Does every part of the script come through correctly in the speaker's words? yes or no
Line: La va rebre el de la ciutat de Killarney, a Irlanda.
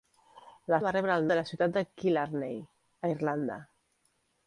yes